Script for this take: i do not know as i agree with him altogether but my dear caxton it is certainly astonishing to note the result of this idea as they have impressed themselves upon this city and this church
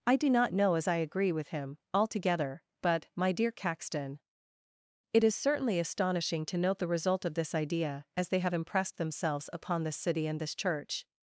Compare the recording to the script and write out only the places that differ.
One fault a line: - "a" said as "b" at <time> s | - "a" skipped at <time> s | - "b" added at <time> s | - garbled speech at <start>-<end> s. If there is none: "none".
none